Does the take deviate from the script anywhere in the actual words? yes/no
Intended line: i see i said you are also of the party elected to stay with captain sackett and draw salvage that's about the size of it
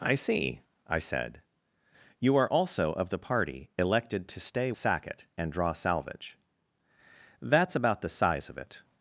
yes